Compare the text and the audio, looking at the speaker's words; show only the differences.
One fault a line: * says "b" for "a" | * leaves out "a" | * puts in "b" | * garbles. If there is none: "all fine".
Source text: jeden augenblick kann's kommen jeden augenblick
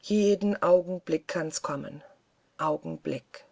* leaves out "jeden"